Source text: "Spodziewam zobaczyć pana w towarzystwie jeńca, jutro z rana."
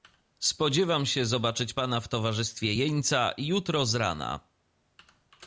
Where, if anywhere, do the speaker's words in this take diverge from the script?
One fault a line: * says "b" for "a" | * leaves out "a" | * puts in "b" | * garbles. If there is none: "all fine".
* puts in "się"